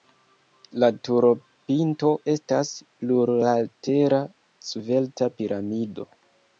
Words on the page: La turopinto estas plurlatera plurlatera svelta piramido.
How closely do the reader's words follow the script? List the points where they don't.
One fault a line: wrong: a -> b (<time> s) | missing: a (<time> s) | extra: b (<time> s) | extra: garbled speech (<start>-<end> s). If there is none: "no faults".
missing: plurlatera (4.2 s)